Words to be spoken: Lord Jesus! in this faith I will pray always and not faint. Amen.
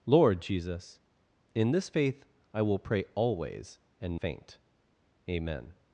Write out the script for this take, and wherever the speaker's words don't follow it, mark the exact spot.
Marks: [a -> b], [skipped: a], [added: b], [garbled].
Lord Jesus! in this faith I will pray always and [skipped: not] faint. Amen.